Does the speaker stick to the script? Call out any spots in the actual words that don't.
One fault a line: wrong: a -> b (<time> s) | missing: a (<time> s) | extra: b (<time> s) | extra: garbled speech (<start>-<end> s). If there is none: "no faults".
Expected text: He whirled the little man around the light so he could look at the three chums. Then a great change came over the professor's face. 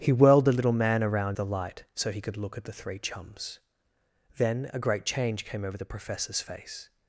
no faults